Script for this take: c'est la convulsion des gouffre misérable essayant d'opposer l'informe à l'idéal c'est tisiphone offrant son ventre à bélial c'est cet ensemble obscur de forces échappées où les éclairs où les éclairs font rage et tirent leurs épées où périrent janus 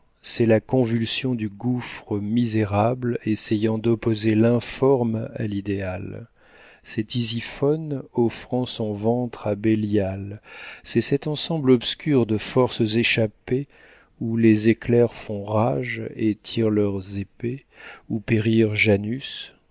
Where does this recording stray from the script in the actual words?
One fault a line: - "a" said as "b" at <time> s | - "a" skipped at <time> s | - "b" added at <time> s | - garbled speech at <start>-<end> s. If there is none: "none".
- "des" said as "du" at 1.4 s
- "où les éclairs" skipped at 15.1 s